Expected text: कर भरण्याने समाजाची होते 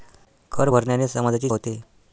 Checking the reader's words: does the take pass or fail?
pass